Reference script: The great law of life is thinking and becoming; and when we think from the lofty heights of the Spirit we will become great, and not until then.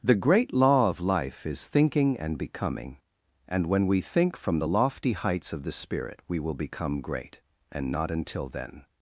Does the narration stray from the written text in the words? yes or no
no